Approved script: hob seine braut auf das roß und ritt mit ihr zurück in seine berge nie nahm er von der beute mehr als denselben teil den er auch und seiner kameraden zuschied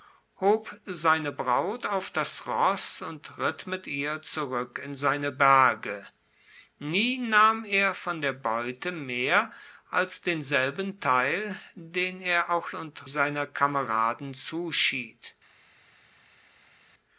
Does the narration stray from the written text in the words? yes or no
no